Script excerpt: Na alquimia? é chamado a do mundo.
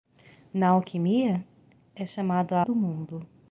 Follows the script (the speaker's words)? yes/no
yes